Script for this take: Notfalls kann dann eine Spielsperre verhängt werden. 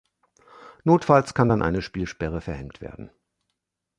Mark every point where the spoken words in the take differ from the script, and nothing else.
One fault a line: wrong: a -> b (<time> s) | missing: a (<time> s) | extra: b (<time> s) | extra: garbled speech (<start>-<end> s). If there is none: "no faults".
no faults